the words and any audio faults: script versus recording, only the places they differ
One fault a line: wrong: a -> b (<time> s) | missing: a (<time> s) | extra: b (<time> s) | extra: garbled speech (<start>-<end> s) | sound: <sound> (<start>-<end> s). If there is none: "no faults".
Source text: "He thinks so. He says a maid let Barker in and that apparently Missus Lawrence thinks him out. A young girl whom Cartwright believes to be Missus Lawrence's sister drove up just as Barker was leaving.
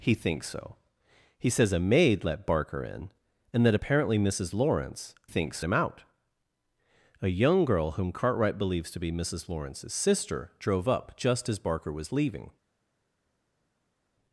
no faults